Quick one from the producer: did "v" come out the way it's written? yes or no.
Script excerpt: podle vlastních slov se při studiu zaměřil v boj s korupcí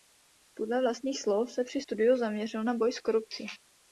no